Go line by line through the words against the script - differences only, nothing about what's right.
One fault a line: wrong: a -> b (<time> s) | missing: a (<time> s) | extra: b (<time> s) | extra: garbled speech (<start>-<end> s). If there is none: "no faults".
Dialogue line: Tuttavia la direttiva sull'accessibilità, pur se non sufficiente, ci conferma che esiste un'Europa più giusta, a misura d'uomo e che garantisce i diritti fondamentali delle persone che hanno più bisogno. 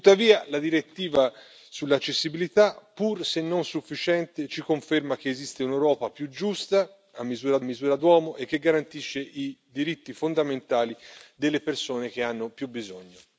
extra: misura (7.6 s)